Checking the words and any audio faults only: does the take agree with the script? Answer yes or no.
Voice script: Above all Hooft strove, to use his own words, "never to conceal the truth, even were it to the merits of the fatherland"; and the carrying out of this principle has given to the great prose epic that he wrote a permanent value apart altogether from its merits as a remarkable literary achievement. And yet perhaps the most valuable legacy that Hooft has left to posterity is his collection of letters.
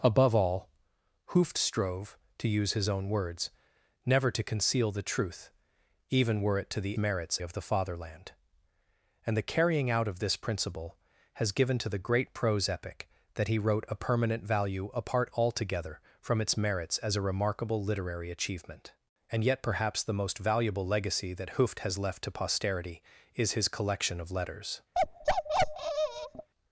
no